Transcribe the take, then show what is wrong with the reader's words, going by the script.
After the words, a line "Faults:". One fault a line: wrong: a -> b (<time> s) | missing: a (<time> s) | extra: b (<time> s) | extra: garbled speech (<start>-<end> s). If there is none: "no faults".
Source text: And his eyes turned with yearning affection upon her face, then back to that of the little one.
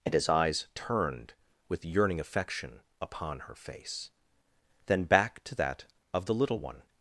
And his eyes turned with yearning affection upon her face, then back to that of the little one.
Faults:
no faults